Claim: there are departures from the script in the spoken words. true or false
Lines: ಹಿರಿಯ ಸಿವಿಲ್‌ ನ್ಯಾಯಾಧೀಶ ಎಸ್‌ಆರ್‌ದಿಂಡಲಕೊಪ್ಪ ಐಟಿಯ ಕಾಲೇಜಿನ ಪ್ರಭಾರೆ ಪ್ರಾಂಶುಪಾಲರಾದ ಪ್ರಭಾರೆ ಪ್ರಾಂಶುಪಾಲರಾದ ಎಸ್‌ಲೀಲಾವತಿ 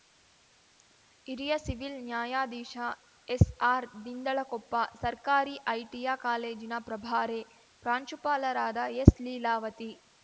true